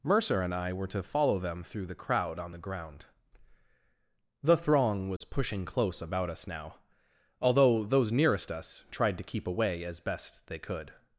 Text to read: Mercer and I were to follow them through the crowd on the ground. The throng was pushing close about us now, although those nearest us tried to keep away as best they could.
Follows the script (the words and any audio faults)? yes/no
no